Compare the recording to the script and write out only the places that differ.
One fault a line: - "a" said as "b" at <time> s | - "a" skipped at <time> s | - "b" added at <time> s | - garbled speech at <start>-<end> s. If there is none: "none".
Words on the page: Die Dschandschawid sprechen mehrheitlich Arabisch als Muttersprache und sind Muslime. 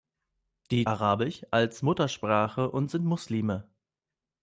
- "Dschandschawid sprechen mehrheitlich" skipped at 0.9 s